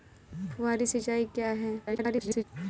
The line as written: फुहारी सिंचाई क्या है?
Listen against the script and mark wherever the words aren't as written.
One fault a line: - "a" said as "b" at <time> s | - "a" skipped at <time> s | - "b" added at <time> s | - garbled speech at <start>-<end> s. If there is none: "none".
- garbled speech at 1.9-2.4 s